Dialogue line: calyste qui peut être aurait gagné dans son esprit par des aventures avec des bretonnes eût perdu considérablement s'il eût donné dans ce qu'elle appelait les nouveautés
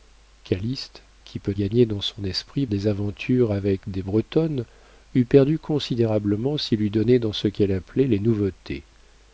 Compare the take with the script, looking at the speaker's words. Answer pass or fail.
fail